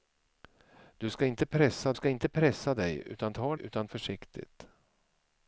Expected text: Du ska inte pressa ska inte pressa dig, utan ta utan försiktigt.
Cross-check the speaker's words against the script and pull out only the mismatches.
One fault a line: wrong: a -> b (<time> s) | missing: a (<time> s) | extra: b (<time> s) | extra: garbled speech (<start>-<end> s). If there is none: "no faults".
no faults